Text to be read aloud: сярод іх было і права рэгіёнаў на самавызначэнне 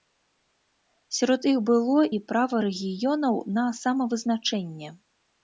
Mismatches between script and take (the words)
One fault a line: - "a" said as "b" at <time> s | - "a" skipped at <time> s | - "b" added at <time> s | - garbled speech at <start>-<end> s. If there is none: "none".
none